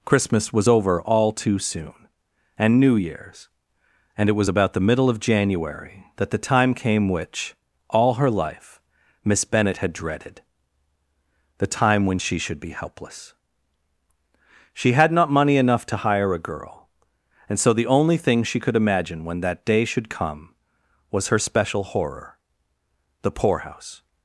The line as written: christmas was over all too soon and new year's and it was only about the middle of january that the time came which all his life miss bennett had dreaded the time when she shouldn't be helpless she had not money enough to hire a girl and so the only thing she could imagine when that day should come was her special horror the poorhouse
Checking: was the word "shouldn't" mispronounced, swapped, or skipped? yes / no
yes